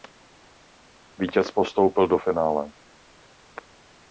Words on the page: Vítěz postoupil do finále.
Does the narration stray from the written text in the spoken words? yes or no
no